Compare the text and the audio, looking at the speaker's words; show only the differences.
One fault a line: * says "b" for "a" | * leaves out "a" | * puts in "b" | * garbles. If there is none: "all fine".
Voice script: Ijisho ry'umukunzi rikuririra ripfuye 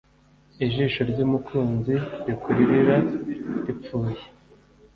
all fine